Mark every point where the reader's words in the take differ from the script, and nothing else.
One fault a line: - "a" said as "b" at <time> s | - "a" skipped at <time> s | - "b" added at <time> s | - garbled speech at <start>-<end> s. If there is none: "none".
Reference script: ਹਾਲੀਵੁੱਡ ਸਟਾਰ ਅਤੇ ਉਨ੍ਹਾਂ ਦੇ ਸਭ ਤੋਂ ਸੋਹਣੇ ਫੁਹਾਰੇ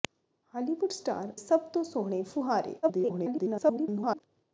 - "ਅਤੇ ਉਨ੍ਹਾਂ ਦੇ" skipped at 1.3 s
- garbled speech at 2.8-4.2 s